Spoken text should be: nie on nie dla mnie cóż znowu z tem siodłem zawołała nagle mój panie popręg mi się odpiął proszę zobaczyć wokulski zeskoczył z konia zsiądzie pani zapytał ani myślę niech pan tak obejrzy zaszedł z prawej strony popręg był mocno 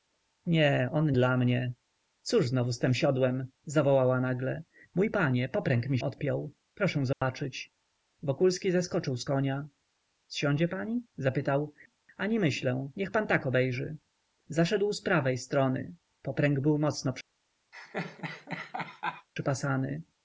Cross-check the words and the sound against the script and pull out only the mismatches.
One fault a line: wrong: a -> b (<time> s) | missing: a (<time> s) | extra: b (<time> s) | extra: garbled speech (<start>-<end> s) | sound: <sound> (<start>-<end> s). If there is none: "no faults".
missing: nie (1.1 s)
missing: się (6.0 s)
sound: dropout (7.1-7.2 s)
sound: laugh (17.7-19.3 s)